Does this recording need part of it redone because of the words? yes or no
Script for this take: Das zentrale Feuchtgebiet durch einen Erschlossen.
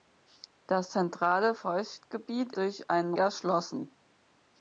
no